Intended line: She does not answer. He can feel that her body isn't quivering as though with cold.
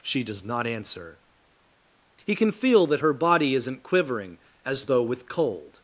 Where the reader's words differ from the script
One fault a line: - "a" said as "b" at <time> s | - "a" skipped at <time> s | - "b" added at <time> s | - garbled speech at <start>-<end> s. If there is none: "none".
none